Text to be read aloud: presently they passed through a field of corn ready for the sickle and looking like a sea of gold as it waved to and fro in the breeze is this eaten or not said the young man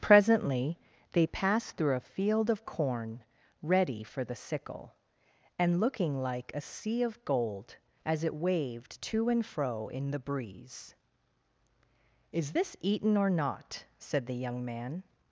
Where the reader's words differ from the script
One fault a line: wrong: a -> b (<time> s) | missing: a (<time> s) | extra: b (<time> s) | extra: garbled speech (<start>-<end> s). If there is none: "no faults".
no faults